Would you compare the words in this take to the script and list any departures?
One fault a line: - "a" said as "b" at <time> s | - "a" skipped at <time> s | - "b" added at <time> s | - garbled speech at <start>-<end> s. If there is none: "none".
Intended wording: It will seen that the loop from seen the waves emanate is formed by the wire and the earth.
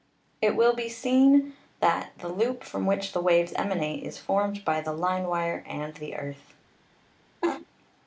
- "be" added at 0.7 s
- "seen" said as "which" at 2.9 s
- "line" added at 4.9 s